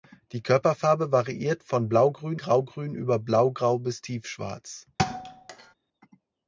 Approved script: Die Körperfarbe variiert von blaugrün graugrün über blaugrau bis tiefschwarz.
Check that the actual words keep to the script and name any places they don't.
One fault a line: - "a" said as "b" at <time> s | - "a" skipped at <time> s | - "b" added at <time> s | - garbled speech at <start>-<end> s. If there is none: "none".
none